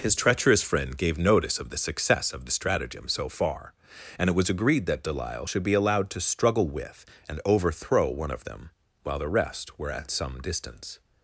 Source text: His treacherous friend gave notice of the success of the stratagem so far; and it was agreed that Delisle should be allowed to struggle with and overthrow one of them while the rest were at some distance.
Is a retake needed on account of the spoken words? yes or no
no